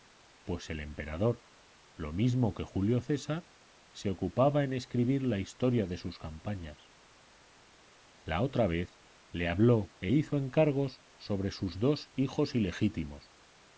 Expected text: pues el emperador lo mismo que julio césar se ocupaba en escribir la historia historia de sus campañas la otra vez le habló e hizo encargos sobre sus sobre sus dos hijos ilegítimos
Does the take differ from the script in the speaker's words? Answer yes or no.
yes